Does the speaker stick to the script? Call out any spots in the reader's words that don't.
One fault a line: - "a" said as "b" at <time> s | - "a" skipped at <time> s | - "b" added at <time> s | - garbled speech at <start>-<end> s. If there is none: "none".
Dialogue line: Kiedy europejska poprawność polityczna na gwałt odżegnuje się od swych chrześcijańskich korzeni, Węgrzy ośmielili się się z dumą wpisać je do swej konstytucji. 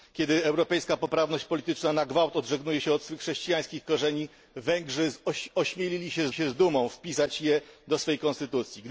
none